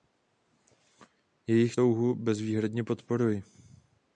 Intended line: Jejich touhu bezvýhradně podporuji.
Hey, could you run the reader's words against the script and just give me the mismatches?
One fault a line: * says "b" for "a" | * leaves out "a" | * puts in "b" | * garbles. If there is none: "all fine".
all fine